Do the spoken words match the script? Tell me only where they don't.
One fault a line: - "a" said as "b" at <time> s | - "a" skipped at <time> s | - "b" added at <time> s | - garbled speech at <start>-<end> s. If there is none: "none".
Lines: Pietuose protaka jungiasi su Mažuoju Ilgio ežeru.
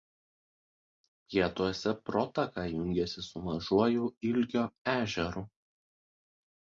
none